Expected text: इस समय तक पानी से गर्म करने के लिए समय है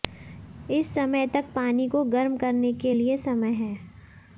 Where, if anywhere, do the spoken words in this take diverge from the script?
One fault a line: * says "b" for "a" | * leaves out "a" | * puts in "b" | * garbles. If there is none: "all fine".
* says "को" for "से"